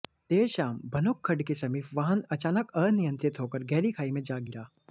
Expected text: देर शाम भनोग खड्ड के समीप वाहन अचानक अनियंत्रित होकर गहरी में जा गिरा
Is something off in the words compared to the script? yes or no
yes